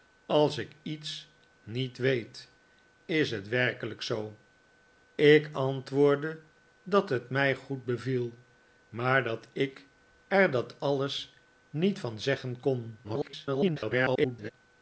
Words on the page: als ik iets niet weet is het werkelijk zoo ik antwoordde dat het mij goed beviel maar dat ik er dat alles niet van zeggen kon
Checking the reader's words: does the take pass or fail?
fail